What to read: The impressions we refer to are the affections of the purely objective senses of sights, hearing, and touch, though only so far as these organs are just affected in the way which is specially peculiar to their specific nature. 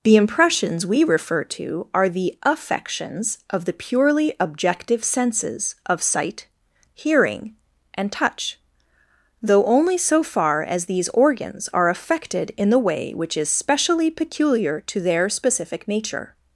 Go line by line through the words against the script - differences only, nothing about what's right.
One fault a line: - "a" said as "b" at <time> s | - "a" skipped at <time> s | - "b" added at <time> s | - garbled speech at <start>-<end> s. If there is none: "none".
- "sights" said as "sight" at 6.0 s
- "just" skipped at 11.9 s